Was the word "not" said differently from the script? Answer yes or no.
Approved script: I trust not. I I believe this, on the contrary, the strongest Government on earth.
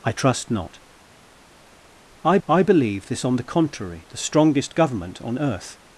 no